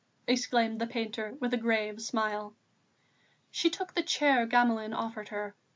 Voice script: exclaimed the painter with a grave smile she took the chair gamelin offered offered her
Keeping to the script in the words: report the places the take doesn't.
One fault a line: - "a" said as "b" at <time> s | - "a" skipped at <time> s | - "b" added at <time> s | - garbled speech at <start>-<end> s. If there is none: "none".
- "offered" skipped at 5.3 s